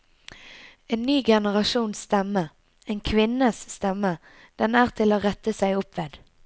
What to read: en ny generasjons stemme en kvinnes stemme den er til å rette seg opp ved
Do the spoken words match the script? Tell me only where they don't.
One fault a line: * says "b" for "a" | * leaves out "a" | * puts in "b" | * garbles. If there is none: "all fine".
all fine